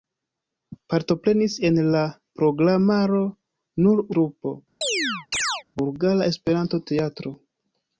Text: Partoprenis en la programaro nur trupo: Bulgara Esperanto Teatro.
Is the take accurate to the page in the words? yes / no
yes